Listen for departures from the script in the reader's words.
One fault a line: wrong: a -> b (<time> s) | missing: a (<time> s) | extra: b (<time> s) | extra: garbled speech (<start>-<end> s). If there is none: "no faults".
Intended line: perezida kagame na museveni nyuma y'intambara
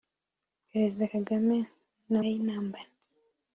missing: museveni nyuma (2.2 s)